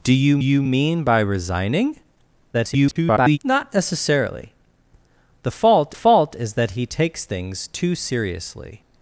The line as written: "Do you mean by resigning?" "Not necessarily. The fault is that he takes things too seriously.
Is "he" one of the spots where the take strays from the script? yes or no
no